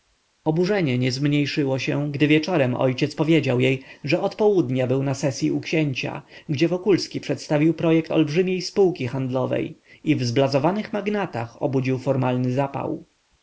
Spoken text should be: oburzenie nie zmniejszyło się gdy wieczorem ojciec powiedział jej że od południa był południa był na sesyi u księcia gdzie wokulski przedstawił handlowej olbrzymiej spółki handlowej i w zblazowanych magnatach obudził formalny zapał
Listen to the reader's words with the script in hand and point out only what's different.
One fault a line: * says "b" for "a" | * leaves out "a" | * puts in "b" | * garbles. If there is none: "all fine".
* leaves out "południa był"
* says "projekt" for "handlowej"